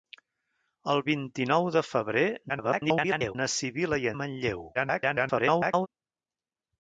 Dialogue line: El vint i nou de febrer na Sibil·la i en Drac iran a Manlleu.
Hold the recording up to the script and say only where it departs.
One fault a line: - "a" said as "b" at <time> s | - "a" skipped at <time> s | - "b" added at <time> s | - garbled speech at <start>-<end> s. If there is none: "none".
- garbled speech at 2.5-3.4 s
- "en Drac iran" skipped at 4.1 s
- garbled speech at 4.7-5.9 s